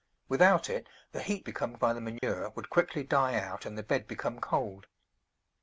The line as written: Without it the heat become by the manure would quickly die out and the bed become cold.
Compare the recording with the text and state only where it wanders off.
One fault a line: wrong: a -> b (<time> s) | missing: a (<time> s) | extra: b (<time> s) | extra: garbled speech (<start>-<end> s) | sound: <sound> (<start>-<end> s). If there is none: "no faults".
sound: dropout (2.2-2.2 s)